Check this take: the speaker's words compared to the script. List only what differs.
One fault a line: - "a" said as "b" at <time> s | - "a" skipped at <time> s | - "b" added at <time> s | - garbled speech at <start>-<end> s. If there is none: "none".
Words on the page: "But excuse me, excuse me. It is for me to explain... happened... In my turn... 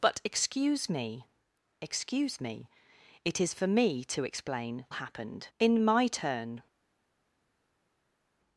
none